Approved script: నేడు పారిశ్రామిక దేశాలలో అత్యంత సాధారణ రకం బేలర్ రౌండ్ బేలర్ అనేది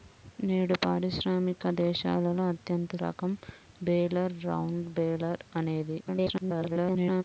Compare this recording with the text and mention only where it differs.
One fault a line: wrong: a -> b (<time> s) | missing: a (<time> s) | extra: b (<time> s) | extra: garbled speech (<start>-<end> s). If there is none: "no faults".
missing: సాధారణ (3.0 s)
extra: garbled speech (6.0-7.2 s)